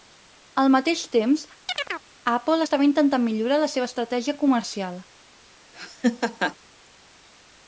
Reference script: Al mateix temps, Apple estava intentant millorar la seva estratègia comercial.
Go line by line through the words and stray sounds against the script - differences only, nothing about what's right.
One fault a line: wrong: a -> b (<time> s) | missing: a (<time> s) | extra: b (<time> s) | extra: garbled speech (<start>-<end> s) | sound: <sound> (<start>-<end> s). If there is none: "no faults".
sound: chirp (1.7-2.1 s)
sound: laugh (5.7-6.6 s)